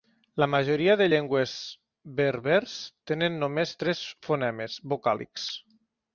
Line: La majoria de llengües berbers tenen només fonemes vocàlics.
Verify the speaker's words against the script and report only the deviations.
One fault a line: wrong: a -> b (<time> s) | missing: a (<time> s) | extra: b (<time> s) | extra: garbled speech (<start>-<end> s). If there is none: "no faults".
extra: tres (3.8 s)